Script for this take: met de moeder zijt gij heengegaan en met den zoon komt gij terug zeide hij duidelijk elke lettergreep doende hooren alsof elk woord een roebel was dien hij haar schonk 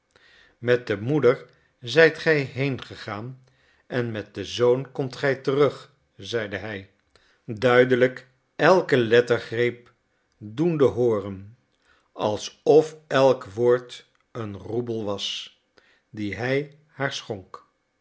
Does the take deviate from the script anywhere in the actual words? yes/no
no